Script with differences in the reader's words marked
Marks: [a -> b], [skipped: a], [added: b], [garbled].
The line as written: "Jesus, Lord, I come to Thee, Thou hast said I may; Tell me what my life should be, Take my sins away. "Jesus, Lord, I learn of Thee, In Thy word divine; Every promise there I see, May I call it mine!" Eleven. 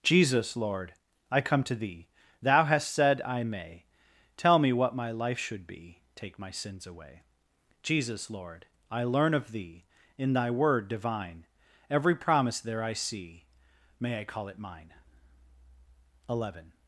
"Jesus, Lord, I come to Thee, Thou hast said I may; Tell me what my life should be, Take my sins away. "Jesus, Lord, I learn of Thee, In Thy word divine; Every promise there I see, May I call it mine!" Eleven.